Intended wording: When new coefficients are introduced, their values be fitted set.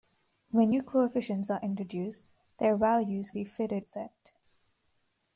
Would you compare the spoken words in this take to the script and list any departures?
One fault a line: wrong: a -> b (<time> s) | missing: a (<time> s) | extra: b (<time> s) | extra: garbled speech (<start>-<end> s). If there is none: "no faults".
no faults